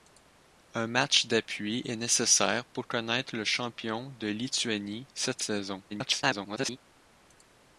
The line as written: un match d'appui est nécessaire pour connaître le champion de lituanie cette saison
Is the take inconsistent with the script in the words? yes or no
yes